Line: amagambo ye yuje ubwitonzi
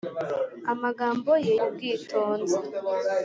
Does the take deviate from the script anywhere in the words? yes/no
yes